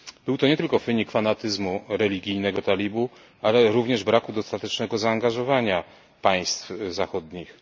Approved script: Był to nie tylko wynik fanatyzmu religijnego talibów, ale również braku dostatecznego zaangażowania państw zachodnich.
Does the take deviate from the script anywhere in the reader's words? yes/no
no